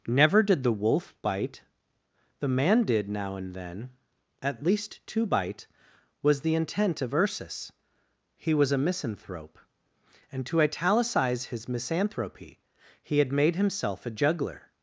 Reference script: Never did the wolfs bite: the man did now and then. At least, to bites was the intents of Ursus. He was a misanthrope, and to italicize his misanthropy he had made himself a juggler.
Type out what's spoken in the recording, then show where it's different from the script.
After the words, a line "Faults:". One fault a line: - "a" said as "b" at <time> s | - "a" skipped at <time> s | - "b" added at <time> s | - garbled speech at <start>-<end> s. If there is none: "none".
Never did the wolf bite: the man did now and then. At least, to bite was the intent of Ursus. He was a misanthrope, and to italicize his misanthropy he had made himself a juggler.
Faults:
- "wolfs" said as "wolf" at 0.7 s
- "bites" said as "bite" at 5.2 s
- "intents" said as "intent" at 6.5 s